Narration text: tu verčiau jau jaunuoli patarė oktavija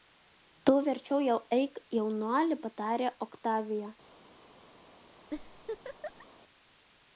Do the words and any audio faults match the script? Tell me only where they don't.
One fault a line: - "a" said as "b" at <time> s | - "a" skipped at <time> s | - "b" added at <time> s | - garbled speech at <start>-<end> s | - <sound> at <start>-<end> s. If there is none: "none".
- "eik" added at 1.6 s
- laugh at 5.3-6.3 s